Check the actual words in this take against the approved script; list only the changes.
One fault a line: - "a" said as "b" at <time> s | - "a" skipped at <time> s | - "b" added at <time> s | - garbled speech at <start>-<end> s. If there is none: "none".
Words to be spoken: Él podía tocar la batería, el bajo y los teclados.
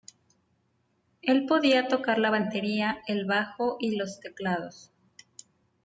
none